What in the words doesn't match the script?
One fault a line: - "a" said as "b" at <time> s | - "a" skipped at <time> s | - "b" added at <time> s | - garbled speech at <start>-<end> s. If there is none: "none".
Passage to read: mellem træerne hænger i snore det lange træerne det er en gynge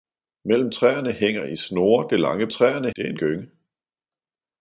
none